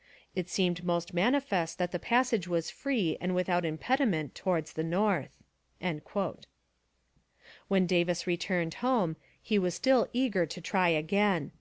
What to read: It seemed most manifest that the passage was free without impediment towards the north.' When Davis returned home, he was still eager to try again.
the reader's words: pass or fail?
fail